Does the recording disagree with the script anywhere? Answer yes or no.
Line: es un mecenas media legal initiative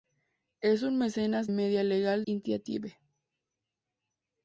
no